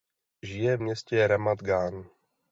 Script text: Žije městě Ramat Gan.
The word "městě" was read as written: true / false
true